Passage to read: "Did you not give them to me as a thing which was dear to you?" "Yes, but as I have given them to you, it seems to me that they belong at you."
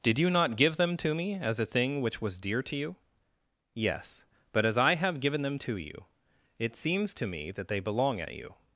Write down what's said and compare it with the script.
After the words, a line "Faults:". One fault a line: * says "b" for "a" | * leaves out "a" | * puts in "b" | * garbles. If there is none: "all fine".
"Did you not give them to me as a thing which was dear to you?" "Yes, but as I have given them to you, it seems to me that they belong at you."
Faults:
all fine